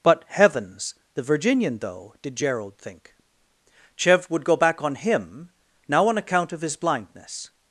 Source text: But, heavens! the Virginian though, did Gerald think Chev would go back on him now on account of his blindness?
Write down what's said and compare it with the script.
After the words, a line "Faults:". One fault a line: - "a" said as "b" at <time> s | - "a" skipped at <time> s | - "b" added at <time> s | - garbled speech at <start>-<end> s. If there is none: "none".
But, heavens! the Virginian though, did Gerald think Chev would go back on him now on account of his blindness?
Faults:
none